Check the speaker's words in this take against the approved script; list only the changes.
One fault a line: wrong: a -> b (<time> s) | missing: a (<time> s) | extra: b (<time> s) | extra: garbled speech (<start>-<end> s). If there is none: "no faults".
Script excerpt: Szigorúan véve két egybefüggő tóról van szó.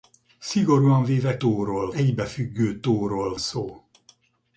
wrong: két -> tóról (1.4 s)
missing: van (3.4 s)